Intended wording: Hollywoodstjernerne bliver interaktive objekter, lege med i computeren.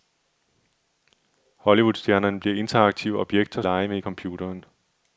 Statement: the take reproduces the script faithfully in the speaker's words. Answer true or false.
true